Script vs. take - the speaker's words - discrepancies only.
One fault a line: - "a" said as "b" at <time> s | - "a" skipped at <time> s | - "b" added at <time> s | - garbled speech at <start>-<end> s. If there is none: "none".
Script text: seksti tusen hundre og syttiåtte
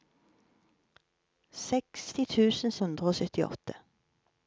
none